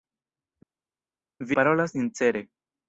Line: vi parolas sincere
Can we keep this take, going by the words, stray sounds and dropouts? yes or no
yes